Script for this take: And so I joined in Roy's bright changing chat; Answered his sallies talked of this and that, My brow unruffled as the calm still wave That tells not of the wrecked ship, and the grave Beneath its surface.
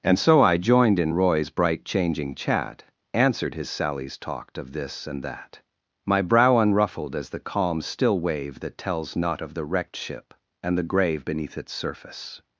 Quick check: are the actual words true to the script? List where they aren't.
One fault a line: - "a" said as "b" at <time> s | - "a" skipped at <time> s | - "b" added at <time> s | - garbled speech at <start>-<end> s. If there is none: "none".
none